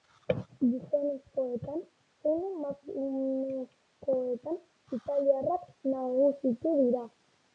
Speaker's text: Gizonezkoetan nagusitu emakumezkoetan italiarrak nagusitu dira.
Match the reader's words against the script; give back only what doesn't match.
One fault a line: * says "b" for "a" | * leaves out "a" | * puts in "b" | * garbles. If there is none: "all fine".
* says "zein" for "nagusitu"